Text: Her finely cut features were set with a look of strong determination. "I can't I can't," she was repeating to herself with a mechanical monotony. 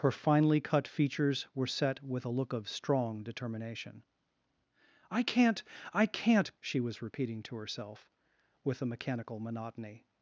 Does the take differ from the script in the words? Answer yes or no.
no